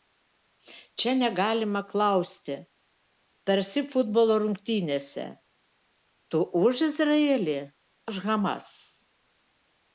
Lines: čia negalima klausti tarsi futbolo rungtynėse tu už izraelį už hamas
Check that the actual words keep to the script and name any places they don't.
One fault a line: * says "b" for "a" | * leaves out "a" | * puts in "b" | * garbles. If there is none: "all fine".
all fine